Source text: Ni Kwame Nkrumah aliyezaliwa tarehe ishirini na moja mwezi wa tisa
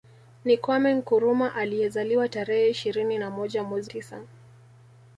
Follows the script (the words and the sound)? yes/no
no